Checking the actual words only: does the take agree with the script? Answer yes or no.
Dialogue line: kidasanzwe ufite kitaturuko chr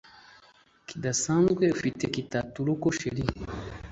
yes